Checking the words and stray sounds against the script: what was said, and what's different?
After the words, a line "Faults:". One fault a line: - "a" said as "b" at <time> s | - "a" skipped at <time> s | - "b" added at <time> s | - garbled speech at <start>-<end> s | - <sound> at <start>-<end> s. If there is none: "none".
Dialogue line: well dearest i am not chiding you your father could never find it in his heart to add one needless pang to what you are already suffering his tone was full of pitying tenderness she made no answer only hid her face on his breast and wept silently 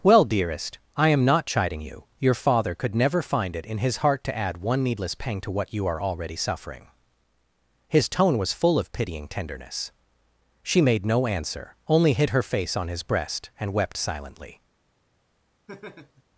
well dearest i am not chiding you your father could never find it in his heart to add one needless pang to what you are already suffering his tone was full of pitying tenderness she made no answer only hid her face on his breast and wept silently
Faults:
- laugh at 15.7-16.2 s